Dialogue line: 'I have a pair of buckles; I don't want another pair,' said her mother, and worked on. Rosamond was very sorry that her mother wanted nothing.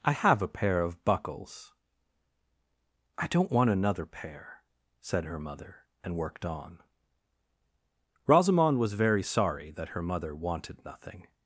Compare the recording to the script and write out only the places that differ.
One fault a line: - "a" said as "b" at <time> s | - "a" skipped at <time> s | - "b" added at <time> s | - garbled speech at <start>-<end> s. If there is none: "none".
none